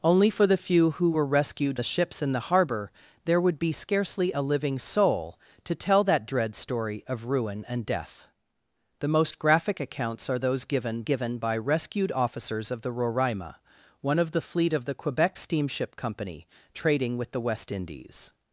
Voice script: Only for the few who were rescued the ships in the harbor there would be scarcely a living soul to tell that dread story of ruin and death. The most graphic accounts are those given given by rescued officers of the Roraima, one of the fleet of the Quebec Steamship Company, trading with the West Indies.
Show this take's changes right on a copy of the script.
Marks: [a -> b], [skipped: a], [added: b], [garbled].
Only for the few who were rescued the ships in the harbor there would be scarcely a living soul to tell that dread story of ruin and death. The most graphic accounts are those given given by rescued officers of the Roraima, one of the fleet of the Quebec Steamship Company, trading with the West Indies.